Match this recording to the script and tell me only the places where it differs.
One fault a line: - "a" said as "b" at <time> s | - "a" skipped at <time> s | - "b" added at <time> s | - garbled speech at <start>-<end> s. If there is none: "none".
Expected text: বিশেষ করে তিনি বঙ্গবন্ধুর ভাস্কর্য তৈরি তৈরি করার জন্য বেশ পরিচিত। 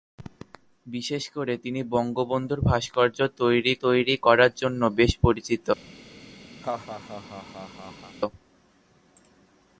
none